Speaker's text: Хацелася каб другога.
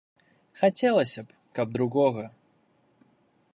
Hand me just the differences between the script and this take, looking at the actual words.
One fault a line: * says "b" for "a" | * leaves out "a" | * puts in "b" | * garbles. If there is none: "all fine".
* puts in "б"